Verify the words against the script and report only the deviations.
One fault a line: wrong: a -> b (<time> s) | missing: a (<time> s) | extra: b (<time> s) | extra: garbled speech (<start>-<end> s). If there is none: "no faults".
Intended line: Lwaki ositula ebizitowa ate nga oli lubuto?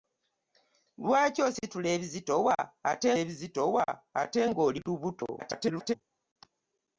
extra: ebizitowa ate (3.2 s)
extra: garbled speech (5.4-5.9 s)